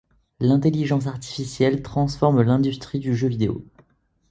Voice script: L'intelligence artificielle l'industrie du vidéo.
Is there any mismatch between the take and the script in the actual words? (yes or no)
yes